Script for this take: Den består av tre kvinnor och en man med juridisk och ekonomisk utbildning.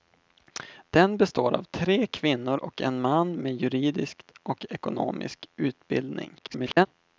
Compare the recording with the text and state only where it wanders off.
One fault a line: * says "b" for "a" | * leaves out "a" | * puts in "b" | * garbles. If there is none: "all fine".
* garbles